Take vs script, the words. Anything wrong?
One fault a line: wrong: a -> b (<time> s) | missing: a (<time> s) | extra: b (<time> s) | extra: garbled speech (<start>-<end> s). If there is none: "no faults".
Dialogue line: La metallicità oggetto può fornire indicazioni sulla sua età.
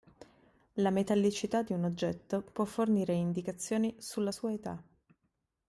extra: di un (1.6 s)